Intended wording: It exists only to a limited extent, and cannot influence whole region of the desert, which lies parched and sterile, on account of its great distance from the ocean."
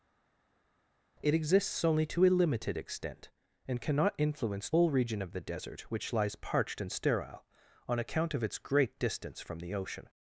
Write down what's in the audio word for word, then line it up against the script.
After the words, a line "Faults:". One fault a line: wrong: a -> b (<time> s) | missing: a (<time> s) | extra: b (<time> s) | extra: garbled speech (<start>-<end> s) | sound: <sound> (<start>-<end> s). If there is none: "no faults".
It exists only to a limited extent, and cannot influence whole region of the desert, which lies parched and sterile, on account of its great distance from the ocean."
Faults:
no faults